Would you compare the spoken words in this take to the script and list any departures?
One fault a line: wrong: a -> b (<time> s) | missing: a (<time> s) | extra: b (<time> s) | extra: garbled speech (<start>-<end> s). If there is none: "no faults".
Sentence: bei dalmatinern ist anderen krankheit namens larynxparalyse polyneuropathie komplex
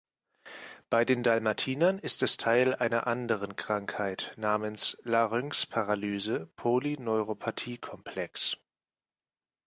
extra: den (1.1 s)
extra: es teil einer (2.2 s)